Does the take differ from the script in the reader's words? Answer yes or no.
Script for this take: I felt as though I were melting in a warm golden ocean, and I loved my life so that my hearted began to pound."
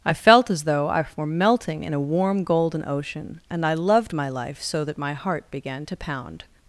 yes